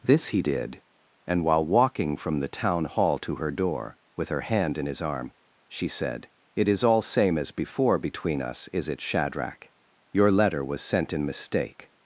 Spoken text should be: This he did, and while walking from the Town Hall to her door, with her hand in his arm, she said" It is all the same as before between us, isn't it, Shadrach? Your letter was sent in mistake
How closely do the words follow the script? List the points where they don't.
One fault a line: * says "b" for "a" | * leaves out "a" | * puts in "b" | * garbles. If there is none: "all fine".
* leaves out "the"
* says "is" for "isn't"